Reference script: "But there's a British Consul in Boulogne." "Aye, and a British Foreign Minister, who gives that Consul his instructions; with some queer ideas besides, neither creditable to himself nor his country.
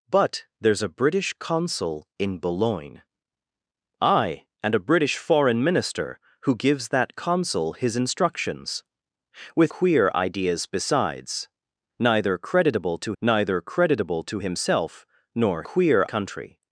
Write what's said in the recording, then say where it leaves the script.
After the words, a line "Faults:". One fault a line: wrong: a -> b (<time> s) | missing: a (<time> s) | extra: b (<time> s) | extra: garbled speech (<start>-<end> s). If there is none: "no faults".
"But there's a British Consul in Boulogne." "Aye, and a British Foreign Minister, who gives that Consul his instructions; with queer ideas besides, neither creditable to neither creditable to himself nor queer country.
Faults:
missing: some (9.7 s)
extra: neither creditable to (13.2 s)
wrong: his -> queer (15.6 s)